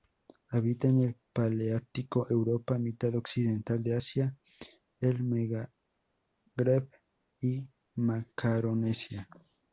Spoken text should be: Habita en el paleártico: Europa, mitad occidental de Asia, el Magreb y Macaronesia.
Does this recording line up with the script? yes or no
yes